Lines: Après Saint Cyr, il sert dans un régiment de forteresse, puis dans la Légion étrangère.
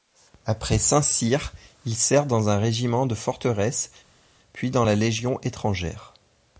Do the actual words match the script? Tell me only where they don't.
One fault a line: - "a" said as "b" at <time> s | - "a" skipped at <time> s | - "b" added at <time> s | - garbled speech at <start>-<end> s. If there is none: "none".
none